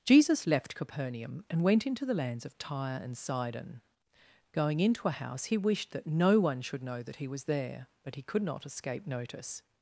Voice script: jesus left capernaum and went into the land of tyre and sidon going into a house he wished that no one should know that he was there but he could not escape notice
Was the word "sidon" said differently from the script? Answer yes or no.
no